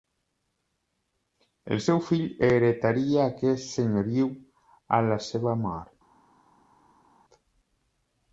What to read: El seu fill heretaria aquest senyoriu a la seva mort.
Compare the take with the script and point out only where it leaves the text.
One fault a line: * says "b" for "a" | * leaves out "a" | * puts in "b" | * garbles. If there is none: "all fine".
all fine